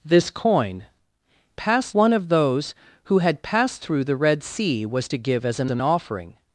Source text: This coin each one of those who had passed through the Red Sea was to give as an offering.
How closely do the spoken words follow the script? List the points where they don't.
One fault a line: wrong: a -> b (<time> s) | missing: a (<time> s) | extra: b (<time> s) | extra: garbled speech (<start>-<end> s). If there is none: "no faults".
wrong: each -> passed (1.6 s)
extra: an (5.7 s)